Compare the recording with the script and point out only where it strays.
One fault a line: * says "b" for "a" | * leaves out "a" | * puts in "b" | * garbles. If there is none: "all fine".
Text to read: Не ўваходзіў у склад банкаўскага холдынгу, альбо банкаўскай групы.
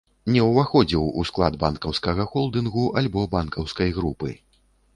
all fine